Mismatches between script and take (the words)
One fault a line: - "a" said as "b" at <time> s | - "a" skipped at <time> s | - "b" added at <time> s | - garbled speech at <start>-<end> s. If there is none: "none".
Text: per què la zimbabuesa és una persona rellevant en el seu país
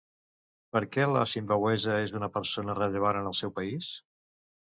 none